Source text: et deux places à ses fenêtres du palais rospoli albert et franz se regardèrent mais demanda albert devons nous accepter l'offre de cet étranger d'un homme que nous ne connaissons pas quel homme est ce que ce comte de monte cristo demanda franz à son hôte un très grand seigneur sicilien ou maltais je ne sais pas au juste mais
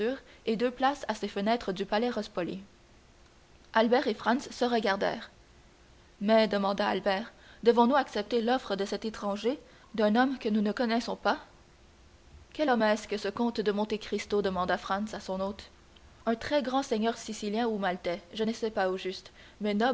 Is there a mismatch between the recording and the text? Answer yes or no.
no